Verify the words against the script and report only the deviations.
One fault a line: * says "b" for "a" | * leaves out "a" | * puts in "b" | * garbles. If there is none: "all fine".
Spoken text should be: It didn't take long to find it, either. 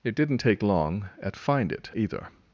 * says "at" for "to"